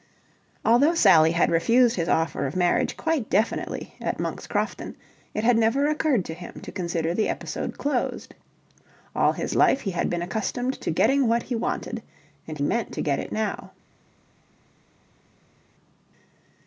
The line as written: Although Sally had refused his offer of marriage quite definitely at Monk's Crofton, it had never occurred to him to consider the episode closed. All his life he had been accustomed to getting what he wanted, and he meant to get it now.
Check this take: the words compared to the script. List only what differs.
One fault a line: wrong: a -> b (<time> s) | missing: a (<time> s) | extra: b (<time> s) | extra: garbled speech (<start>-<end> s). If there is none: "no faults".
missing: he (12.6 s)